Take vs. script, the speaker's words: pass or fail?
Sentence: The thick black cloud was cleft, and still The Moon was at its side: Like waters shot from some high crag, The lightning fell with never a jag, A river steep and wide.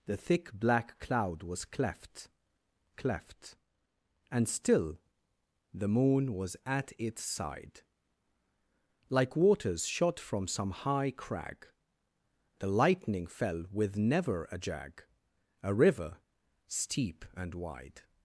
fail